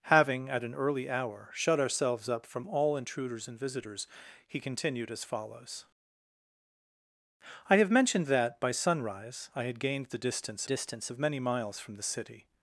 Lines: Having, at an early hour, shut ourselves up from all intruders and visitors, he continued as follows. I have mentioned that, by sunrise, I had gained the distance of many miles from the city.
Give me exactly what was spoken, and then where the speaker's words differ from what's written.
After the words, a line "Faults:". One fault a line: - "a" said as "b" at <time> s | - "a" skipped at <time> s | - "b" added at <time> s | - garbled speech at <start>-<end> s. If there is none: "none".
Having, at an early hour, shut ourselves up from all intruders and visitors, he continued as follows. I have mentioned that, by sunrise, I had gained the distance distance of many miles from the city.
Faults:
- "distance" added at 10.6 s